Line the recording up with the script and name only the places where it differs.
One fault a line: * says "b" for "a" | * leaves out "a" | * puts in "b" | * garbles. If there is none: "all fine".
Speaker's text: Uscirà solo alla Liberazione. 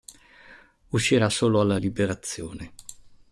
all fine